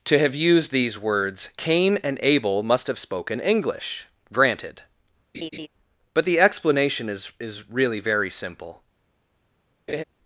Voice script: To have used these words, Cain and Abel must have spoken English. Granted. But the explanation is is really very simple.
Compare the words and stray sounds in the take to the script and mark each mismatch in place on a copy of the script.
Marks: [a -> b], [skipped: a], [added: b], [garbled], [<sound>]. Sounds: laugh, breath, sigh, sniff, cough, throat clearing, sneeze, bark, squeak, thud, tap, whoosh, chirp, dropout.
To have used these words, Cain and Abel must have spoken English. Granted. [laugh] But the explanation is is really very simple. [laugh]